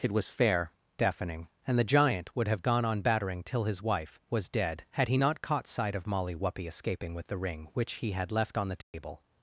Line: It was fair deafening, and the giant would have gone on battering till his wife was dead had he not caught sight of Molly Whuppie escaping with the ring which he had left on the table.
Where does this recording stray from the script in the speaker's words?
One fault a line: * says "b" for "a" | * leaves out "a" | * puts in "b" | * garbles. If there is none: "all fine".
all fine